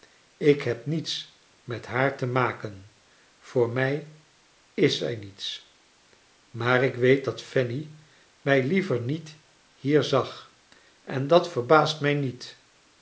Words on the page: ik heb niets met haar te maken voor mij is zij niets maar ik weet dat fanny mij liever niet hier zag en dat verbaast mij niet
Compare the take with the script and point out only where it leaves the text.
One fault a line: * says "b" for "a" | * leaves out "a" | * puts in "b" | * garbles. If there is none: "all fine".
all fine